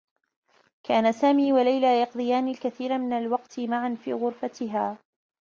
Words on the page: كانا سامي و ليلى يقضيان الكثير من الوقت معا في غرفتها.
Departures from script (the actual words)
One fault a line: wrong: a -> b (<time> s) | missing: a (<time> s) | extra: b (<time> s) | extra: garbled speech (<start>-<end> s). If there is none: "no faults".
no faults